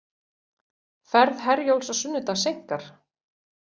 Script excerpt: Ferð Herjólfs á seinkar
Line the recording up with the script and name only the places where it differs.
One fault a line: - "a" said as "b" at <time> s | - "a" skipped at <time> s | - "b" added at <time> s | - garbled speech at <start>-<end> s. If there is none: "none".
- "sunnudag" added at 2.0 s